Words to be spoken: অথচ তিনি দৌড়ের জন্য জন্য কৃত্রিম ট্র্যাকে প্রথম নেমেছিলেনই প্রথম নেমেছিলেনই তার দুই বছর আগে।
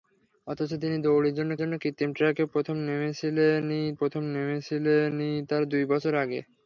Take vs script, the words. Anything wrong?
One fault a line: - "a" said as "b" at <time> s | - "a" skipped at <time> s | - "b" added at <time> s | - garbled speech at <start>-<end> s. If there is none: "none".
none